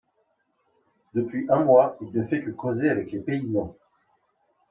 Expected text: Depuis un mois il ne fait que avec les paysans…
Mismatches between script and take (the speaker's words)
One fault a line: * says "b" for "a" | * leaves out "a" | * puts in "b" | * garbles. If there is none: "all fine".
* puts in "causer"